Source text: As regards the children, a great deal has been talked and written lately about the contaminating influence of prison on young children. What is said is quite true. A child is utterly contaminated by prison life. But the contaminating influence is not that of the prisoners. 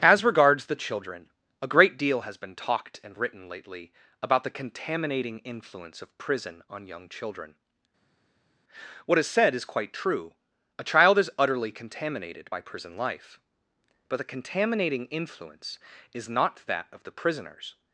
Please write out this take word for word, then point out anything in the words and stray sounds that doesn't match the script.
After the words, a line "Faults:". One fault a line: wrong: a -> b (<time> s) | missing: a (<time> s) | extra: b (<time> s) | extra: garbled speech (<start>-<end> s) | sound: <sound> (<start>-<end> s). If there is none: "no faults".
As regards the children, a great deal has been talked and written lately about the contaminating influence of prison on young children. What is said is quite true. A child is utterly contaminated by prison life. But the contaminating influence is not that of the prisoners.
Faults:
no faults